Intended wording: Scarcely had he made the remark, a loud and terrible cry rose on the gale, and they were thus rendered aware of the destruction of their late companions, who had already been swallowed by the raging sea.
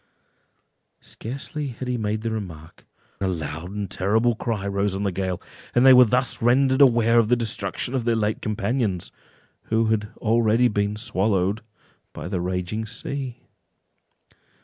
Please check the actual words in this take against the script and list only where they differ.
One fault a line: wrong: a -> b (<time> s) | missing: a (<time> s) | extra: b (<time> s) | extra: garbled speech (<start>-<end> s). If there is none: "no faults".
no faults